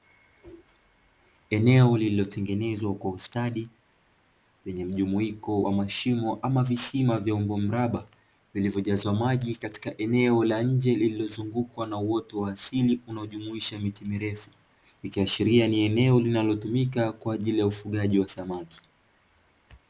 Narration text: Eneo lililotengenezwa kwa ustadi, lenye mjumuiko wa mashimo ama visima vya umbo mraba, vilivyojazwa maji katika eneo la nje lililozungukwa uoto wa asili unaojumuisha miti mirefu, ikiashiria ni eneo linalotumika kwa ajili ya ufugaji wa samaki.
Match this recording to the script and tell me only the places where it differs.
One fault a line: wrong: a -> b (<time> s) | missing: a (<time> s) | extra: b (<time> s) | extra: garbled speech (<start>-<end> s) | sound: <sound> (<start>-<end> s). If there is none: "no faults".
extra: na (11.9 s)